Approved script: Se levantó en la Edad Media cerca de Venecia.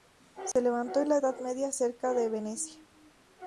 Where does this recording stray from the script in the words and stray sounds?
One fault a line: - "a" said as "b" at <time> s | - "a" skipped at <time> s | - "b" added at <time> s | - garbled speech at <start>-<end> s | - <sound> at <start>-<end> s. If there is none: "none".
- dropout at 0.5-0.6 s